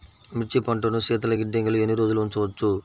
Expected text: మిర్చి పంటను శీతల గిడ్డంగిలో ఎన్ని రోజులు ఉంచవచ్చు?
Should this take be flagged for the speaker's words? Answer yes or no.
no